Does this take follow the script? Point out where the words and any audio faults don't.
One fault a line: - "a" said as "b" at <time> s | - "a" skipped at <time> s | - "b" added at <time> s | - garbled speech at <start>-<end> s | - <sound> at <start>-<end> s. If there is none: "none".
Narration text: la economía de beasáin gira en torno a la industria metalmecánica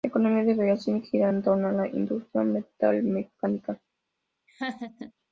- laugh at 4.5-5.1 s